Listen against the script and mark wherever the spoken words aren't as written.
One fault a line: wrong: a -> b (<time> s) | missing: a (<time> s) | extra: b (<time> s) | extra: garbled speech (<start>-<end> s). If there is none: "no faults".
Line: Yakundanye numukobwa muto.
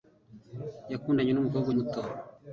no faults